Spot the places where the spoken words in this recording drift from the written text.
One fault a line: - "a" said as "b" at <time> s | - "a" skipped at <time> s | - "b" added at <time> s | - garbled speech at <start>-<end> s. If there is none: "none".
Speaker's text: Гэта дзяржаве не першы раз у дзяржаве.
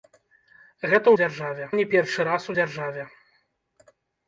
none